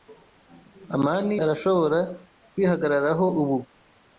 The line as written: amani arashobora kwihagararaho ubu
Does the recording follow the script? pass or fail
pass